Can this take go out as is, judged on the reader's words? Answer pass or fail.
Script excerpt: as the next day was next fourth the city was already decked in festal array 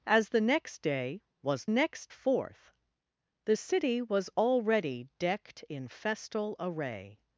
pass